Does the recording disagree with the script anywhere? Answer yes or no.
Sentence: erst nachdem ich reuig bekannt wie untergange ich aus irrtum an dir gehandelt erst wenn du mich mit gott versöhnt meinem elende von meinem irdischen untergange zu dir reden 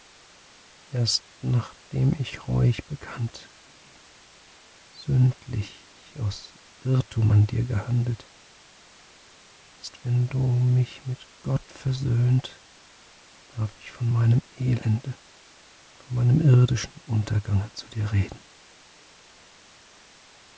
yes